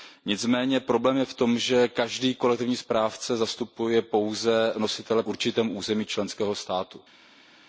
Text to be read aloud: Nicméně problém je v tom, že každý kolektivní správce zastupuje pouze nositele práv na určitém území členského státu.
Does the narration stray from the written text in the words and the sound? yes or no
yes